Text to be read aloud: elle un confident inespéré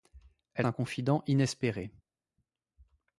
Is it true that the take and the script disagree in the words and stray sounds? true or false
false